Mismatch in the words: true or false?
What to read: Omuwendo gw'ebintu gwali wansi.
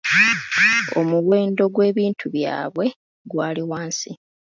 true